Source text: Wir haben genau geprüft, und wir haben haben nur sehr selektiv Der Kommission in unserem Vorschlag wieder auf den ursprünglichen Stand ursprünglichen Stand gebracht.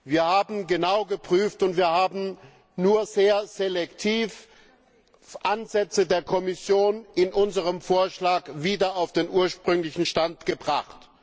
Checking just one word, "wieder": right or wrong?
right